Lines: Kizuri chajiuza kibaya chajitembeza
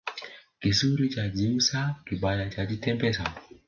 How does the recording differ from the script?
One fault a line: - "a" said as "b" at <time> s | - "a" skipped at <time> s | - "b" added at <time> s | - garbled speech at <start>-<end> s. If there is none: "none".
none